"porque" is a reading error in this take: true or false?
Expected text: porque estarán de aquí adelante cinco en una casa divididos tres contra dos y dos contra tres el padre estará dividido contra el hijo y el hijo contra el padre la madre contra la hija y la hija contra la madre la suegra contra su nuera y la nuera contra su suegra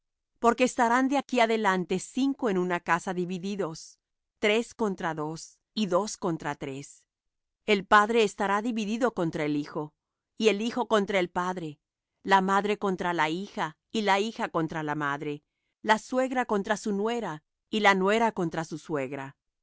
false